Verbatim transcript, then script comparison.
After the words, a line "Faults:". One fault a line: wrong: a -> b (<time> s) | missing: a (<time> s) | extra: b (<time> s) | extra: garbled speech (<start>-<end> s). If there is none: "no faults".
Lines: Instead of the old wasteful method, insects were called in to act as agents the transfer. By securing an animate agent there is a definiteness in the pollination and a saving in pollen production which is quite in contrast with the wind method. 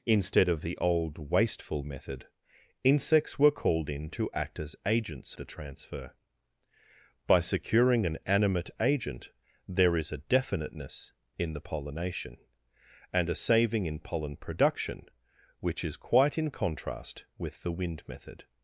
Instead of the old wasteful method, insects were called in to act as agents the transfer. By securing an animate agent there is a definiteness in the pollination and a saving in pollen production which is quite in contrast with the wind method.
Faults:
no faults